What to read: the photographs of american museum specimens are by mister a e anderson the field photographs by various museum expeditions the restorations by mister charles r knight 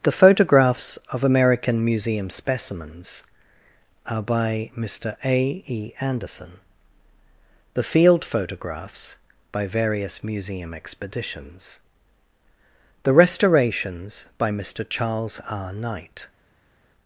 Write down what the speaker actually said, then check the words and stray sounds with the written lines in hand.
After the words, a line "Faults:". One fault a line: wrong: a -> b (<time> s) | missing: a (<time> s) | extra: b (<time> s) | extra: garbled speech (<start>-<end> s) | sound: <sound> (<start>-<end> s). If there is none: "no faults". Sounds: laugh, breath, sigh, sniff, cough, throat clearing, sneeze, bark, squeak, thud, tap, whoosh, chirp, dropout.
the photographs of american museum specimens are by mister a e anderson the field photographs by various museum expeditions the restorations by mister charles r knight
Faults:
no faults